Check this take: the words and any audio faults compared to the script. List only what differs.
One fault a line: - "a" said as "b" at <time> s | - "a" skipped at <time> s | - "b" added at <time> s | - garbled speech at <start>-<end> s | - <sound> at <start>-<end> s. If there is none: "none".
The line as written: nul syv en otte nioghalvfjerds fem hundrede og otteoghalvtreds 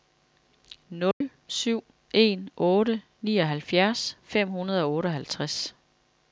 - dropout at 1.1-1.2 s